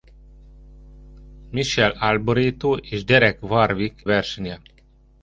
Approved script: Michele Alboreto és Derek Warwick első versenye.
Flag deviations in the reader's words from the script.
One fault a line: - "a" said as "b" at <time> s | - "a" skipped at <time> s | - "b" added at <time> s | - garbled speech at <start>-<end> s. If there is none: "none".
- "első" skipped at 4.0 s